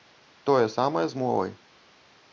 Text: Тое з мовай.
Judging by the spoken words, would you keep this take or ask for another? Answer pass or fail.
fail